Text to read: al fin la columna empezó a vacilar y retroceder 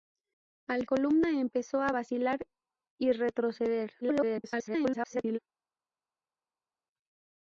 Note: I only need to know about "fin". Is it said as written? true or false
false